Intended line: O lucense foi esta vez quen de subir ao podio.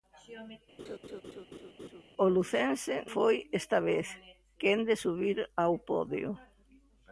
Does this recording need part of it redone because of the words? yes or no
no